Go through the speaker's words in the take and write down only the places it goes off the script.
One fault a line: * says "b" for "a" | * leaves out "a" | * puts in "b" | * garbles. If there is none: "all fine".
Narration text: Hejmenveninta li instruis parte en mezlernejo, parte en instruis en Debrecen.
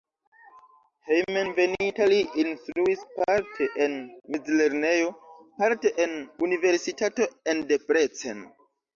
* says "universitato" for "instruis"